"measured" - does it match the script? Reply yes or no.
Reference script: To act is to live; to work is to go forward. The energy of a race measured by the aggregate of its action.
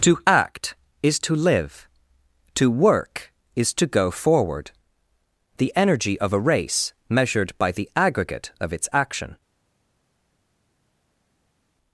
yes